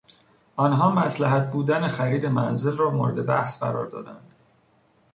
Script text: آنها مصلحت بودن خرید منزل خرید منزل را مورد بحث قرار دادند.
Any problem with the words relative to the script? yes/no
yes